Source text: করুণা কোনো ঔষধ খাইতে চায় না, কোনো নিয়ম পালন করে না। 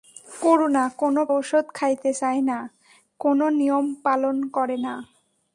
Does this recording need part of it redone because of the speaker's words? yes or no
no